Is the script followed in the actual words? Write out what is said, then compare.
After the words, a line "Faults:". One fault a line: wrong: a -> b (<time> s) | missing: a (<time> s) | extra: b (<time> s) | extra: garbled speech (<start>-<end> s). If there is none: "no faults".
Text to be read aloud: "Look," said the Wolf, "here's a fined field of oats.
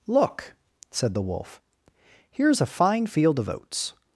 "Look," said the Wolf, "here's a fine field of oats.
Faults:
wrong: fined -> fine (2.6 s)